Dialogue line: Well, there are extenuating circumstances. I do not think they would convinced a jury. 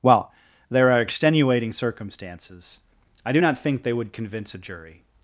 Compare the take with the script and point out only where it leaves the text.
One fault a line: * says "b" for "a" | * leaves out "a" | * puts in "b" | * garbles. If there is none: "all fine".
* says "convince" for "convinced"